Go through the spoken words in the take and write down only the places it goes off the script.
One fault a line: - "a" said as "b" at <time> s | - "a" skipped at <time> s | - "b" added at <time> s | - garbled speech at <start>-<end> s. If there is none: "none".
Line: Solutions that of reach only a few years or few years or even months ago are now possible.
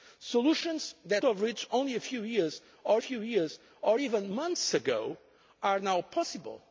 none